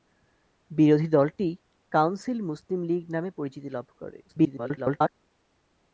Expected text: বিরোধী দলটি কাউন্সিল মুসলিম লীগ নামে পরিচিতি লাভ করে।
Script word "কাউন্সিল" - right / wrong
right